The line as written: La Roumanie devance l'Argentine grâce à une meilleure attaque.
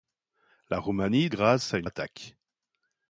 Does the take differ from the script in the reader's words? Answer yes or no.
yes